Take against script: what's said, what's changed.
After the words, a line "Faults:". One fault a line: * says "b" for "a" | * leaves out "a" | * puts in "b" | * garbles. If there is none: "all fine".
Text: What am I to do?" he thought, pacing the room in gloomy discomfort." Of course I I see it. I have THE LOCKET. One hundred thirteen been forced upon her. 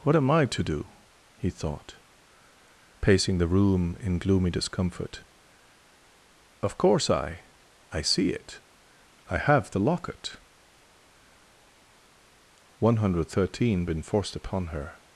What am I to do?" he thought, pacing the room in gloomy discomfort." Of course I I see it. I have THE LOCKET. One hundred thirteen been forced upon her.
Faults:
all fine